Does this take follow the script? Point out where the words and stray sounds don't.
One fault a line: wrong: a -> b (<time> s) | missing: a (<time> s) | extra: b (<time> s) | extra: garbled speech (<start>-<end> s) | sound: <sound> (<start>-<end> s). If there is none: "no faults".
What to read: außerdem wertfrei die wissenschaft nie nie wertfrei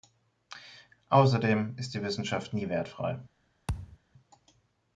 wrong: wertfrei -> ist (1.8 s)
missing: nie (2.7 s)
sound: thud (3.7-4.0 s)